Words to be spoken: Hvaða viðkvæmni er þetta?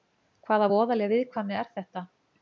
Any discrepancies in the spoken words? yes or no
yes